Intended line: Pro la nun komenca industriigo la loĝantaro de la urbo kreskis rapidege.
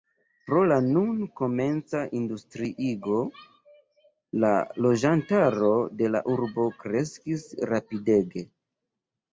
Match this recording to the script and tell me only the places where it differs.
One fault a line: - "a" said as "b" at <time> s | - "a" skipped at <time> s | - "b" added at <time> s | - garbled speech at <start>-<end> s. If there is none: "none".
none